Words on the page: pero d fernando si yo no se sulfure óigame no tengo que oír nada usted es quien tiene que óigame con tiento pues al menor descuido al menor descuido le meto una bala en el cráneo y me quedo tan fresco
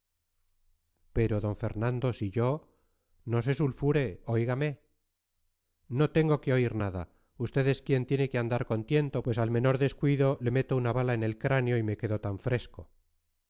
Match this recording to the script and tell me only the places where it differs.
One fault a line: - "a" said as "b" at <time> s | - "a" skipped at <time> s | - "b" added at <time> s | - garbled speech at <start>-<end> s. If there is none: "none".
- "óigame" said as "andar" at 8.4 s
- "al menor descuido" skipped at 10.3 s